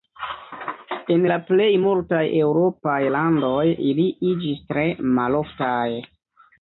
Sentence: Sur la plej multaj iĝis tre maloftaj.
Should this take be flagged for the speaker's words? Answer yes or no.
yes